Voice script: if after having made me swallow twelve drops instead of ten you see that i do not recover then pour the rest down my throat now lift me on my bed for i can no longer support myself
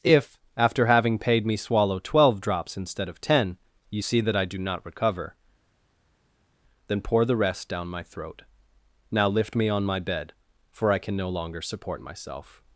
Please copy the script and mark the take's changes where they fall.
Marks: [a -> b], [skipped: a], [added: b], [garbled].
if after having [made -> paid] me swallow twelve drops instead of ten you see that i do not recover then pour the rest down my throat now lift me on my bed for i can no longer support myself